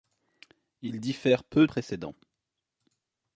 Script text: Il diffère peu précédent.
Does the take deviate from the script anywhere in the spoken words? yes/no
no